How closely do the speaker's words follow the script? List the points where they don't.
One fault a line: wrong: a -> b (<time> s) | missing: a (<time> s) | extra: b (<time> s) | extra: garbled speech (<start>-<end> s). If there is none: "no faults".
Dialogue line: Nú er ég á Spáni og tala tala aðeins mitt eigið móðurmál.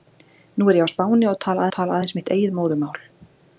no faults